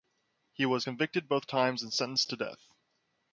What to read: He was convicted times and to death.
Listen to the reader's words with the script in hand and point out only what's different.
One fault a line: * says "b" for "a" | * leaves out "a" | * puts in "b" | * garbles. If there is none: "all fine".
* puts in "both"
* puts in "sentenced"